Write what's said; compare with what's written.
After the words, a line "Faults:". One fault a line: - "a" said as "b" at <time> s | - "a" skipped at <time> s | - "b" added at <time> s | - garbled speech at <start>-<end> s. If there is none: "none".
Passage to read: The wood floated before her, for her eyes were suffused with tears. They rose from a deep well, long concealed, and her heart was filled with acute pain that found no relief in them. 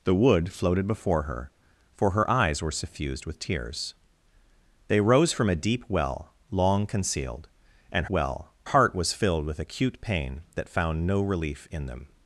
The wood floated before her, for her eyes were suffused with tears. They rose from a deep well, long concealed, and well heart was filled with acute pain that found no relief in them.
Faults:
- "her" said as "well" at 8.1 s